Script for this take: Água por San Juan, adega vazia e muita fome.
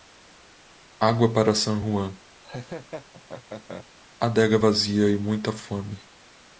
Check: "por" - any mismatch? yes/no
yes